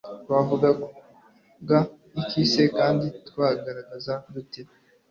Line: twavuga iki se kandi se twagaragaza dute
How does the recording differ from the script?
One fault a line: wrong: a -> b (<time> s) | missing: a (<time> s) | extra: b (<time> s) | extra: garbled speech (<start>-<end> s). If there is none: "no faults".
missing: se (3.1 s)